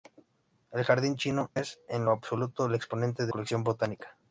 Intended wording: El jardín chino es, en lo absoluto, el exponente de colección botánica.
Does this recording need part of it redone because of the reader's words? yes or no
no